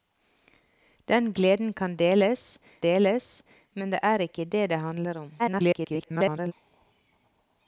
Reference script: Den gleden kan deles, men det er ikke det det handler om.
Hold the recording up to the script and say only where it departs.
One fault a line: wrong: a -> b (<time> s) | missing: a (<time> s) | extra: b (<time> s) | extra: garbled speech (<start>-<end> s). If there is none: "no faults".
extra: deles (2.8 s)
extra: garbled speech (5.4-6.5 s)